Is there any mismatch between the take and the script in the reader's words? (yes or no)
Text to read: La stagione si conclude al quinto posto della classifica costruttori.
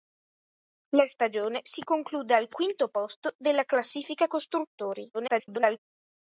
yes